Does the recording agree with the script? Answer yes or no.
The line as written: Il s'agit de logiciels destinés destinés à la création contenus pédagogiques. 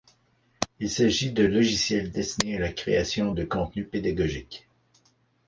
no